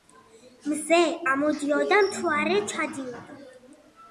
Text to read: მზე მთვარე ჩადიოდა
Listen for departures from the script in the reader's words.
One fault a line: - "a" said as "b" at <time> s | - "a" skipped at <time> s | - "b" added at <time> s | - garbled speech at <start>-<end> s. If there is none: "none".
- "ამოდიოდა" added at 1.3 s